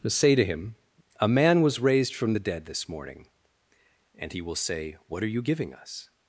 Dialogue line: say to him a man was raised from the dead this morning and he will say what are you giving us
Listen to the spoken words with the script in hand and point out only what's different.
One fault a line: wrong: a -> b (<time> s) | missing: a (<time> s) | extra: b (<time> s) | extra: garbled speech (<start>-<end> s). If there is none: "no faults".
no faults